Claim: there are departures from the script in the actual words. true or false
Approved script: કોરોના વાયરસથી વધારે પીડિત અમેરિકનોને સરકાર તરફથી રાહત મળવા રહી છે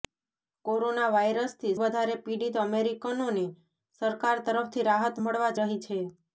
false